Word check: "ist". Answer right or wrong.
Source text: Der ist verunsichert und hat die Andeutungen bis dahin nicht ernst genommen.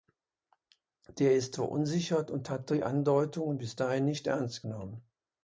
right